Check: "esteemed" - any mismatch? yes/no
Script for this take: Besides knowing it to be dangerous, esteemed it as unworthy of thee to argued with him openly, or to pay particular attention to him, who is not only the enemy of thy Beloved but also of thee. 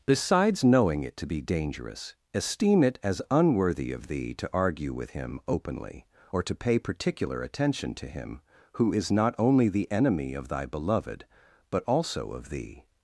yes